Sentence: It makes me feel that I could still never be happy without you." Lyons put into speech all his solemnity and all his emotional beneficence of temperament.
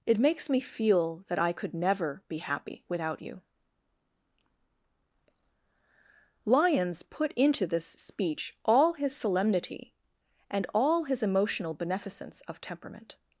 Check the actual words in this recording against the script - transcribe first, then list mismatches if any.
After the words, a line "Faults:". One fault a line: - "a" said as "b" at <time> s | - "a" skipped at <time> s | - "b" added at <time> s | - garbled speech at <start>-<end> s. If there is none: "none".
It makes me feel that I could never be happy without you." Lyons put into this speech all his solemnity and all his emotional beneficence of temperament.
Faults:
- "still" skipped at 1.7 s
- "this" added at 7.7 s